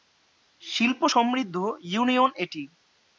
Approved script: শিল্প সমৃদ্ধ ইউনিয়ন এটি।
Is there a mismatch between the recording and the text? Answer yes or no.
no